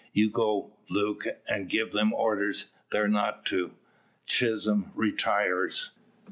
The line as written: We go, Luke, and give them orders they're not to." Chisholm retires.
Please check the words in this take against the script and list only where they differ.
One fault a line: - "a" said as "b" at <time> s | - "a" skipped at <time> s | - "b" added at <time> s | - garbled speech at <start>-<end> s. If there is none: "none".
- "We" said as "You" at 0.1 s